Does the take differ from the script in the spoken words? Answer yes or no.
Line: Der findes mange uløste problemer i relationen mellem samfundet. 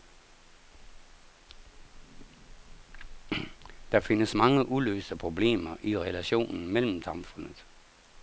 no